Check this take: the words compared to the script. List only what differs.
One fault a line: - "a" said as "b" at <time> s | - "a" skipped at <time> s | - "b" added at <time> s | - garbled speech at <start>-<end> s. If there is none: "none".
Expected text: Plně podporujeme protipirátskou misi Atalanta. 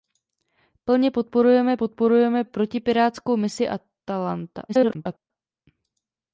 - "podporujeme" added at 1.8 s
- garbled speech at 4.7-5.3 s